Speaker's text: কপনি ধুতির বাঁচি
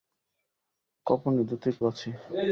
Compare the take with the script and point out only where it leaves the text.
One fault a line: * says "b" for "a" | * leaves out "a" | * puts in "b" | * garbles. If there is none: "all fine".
all fine